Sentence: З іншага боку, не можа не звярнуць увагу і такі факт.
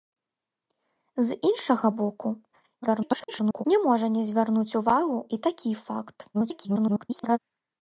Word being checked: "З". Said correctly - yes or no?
yes